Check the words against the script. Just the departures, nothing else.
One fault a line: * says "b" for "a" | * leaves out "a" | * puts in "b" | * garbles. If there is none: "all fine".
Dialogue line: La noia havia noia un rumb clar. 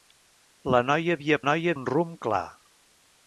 all fine